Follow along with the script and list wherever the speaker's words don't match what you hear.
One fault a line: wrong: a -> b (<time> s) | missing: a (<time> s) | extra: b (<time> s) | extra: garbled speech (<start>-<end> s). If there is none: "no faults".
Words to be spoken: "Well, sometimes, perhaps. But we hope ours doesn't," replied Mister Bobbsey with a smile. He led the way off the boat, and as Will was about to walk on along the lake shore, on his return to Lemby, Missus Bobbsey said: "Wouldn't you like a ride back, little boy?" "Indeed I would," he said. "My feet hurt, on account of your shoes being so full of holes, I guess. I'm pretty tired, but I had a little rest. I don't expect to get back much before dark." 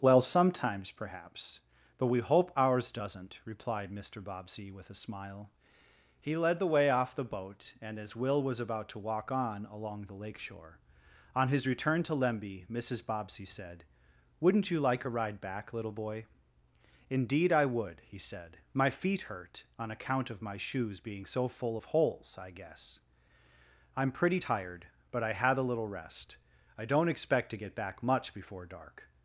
wrong: your -> my (20.4 s)